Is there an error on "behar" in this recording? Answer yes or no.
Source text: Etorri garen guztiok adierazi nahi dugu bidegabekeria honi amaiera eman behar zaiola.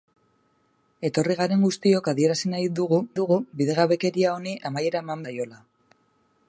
yes